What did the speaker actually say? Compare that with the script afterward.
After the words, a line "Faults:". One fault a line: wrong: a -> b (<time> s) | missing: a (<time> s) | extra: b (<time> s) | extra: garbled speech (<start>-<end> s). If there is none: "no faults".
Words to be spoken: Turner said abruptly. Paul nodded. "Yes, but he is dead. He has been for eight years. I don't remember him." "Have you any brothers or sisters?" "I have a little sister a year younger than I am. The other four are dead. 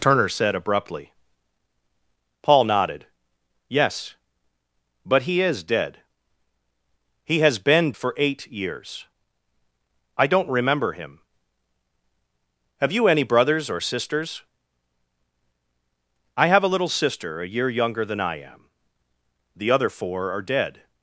Turner said abruptly. Paul nodded. "Yes, but he is dead. He has been for eight years. I don't remember him." "Have you any brothers or sisters?" "I have a little sister a year younger than I am. The other four are dead.
Faults:
no faults